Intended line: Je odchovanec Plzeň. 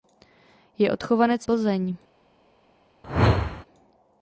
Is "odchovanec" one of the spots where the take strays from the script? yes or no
no